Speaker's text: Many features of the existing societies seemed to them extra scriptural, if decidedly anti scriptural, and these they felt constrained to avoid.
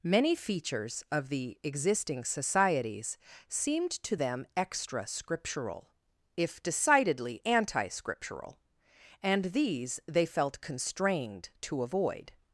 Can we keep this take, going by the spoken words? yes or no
yes